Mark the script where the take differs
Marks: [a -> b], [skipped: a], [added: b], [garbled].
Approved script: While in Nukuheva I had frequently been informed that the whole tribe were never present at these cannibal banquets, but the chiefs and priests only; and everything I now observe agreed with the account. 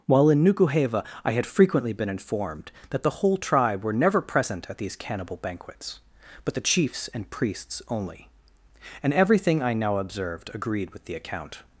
While in Nukuheva I had frequently been informed that the whole tribe were never present at these cannibal banquets, but the chiefs and priests only; and everything I now [observe -> observed] agreed with the account.